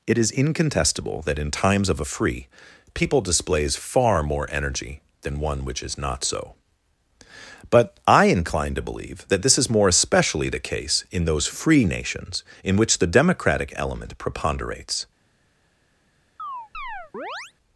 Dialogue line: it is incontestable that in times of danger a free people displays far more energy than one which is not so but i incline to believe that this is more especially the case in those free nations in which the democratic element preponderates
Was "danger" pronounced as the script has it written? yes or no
no